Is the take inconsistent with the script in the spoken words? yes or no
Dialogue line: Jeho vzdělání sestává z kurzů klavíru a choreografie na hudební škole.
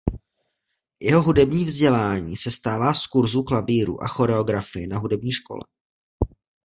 yes